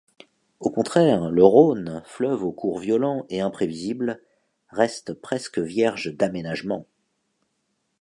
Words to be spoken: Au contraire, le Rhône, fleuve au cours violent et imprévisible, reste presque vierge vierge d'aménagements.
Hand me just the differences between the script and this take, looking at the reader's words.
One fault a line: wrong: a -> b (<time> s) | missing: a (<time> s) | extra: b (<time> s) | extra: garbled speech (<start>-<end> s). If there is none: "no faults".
missing: vierge (6.2 s)